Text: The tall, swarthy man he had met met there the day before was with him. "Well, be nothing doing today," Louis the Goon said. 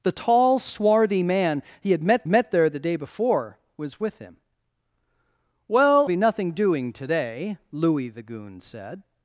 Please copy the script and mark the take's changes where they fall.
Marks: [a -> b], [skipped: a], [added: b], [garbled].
The tall, swarthy man he had met met there the day before was with him. "Well, be nothing doing today," Louis the Goon said.